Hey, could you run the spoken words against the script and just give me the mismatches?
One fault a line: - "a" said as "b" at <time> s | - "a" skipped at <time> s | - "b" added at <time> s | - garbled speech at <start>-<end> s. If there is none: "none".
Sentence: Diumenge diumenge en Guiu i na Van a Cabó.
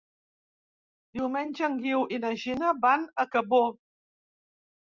- "diumenge" skipped at 1.7 s
- "Gina" added at 2.5 s